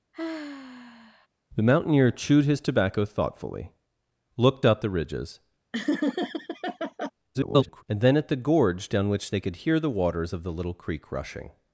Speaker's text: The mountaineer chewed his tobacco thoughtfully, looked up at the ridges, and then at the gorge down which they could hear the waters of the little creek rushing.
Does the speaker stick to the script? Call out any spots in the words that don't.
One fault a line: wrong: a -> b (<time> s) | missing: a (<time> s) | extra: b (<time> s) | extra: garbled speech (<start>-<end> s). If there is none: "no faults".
missing: at (4.8 s)
extra: garbled speech (7.3-7.8 s)